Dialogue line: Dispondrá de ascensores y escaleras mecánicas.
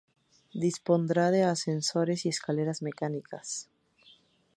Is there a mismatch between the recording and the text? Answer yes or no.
no